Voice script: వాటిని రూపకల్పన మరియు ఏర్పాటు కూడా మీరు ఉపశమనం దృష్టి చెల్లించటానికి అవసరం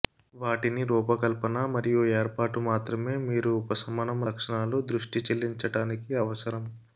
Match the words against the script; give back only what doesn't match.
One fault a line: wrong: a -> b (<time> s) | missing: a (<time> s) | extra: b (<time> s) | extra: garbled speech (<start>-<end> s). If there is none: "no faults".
wrong: కూడా -> మాత్రమే (2.7 s)
extra: లక్షణాలు (4.3 s)